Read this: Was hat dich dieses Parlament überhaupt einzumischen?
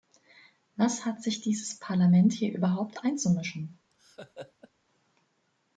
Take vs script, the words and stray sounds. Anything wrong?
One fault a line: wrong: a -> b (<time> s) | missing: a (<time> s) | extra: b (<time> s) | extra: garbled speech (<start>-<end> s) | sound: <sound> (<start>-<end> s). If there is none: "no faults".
wrong: dich -> sich (1.2 s)
extra: hier (2.3 s)
sound: laugh (3.9-4.7 s)